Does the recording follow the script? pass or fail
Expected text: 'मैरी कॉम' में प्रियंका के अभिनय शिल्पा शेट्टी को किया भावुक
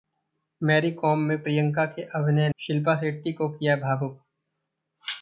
pass